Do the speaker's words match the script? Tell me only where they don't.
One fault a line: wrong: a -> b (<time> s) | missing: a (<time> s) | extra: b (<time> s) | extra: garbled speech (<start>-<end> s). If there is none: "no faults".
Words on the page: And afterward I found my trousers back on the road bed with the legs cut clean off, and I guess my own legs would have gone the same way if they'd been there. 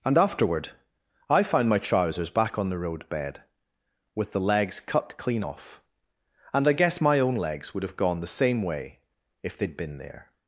no faults